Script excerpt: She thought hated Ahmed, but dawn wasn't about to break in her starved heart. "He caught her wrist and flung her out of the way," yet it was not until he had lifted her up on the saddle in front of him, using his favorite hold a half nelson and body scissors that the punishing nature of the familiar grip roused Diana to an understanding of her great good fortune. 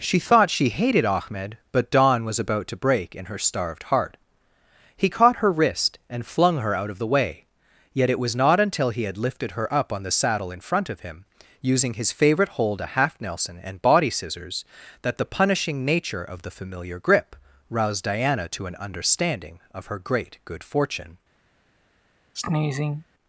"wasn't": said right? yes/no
no